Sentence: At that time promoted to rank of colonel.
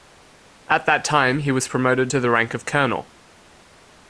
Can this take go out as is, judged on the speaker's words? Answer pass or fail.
fail